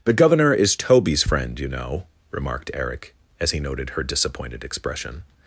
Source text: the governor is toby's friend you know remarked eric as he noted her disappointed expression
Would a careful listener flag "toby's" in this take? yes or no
no